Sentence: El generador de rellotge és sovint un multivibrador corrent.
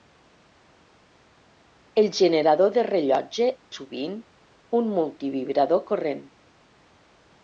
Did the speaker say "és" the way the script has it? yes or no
no